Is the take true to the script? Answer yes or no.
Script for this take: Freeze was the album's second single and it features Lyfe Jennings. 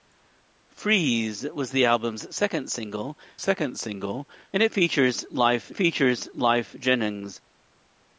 no